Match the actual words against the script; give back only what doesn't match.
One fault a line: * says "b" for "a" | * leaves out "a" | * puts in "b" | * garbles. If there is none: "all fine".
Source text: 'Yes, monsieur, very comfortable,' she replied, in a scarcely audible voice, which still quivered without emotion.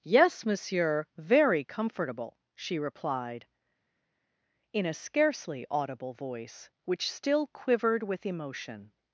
* says "with" for "without"